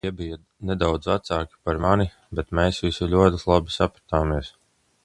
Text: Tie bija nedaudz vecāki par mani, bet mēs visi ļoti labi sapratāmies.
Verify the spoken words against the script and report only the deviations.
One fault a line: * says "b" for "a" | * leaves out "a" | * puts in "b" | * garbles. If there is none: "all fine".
all fine